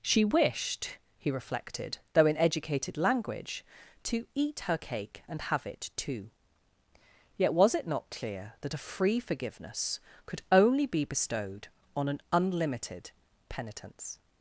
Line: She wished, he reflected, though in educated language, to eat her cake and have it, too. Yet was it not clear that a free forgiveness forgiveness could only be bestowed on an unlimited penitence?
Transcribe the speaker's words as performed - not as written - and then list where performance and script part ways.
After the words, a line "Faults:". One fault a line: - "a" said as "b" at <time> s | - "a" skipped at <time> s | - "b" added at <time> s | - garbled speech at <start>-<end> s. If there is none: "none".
She wished, he reflected, though in educated language, to eat her cake and have it, too. Yet was it not clear that a free forgiveness could only be bestowed on an unlimited penitence?
Faults:
- "forgiveness" skipped at 10.0 s